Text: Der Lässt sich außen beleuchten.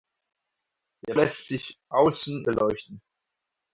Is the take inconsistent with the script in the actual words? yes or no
no